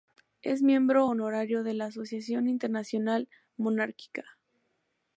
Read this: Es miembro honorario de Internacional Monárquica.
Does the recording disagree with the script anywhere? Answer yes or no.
yes